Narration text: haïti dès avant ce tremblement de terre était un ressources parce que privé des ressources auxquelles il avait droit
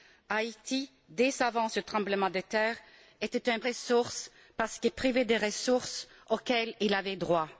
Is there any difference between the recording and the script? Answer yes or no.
no